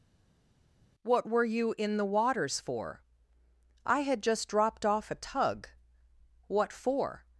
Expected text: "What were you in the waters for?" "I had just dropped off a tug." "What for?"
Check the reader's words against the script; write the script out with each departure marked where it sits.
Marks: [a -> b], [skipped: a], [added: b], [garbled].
"What were you in the waters for?" "I had just dropped off a tug." "What for?"